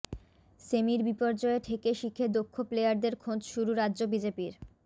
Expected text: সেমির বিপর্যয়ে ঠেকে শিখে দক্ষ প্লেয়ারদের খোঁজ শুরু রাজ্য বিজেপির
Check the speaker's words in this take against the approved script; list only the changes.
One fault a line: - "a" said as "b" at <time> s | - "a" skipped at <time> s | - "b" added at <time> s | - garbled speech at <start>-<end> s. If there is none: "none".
none